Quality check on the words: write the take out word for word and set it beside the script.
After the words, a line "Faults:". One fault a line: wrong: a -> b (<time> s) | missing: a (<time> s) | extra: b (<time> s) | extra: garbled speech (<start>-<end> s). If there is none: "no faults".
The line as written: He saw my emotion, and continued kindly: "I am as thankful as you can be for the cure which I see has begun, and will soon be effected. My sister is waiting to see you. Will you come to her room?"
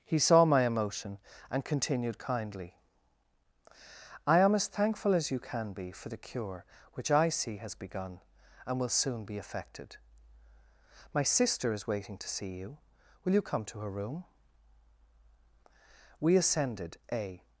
He saw my emotion, and continued kindly: "I am as thankful as you can be for the cure which I see has begun, and will soon be effected. My sister is waiting to see you. Will you come to her room?" We ascended a
Faults:
extra: We ascended a (16.2 s)